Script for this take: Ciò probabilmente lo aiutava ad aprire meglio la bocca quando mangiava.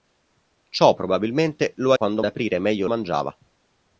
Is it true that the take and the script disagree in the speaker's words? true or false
true